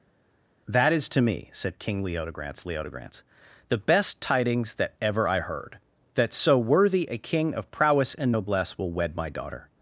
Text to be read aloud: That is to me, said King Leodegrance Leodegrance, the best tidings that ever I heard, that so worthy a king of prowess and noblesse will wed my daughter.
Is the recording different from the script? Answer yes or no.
no